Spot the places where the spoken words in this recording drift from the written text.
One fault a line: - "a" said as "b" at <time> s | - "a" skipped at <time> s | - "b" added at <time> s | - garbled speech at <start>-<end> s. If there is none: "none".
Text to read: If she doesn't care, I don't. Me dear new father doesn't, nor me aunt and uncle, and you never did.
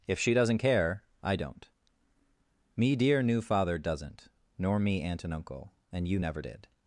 none